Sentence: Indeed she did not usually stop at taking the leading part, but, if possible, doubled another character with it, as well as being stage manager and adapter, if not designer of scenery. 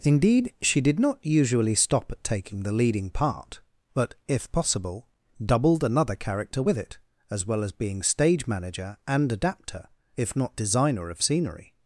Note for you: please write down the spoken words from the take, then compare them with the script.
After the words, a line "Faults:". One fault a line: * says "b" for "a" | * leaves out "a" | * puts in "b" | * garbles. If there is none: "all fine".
Indeed she did not usually stop at taking the leading part, but, if possible, doubled another character with it, as well as being stage manager and adapter, if not designer of scenery.
Faults:
all fine